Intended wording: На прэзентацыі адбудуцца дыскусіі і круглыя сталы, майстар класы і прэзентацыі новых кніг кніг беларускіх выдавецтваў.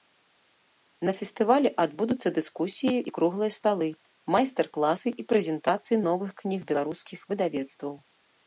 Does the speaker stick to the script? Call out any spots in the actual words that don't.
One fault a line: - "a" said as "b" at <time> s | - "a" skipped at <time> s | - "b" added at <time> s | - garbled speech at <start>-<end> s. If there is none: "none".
- "прэзентацыі" said as "фестывалі" at 1.2 s
- "кніг" skipped at 6.6 s